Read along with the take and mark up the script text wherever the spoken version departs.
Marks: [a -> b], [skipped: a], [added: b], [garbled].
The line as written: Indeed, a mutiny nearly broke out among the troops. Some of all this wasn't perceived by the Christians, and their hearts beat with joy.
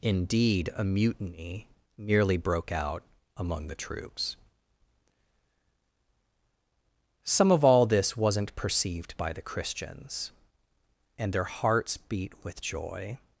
Indeed, a mutiny nearly broke out among the troops. Some of all this wasn't perceived by the Christians, and their hearts beat with joy.